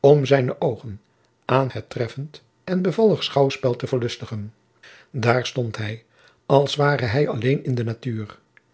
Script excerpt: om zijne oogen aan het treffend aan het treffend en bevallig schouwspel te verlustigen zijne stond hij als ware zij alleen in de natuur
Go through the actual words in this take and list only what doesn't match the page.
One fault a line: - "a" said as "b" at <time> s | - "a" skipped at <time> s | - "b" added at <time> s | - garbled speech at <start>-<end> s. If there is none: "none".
- "aan het treffend" skipped at 2.4 s
- "zijne" said as "daar" at 5.1 s
- "zij" said as "hij" at 7.1 s